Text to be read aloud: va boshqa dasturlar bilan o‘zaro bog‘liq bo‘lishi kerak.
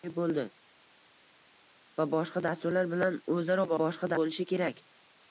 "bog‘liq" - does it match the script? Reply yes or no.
no